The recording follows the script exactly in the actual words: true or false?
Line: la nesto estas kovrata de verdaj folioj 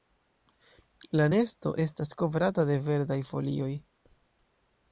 true